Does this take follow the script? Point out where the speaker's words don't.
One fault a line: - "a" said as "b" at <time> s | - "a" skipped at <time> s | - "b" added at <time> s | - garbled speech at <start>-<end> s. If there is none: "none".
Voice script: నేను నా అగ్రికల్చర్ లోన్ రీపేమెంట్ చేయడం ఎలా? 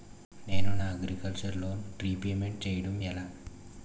none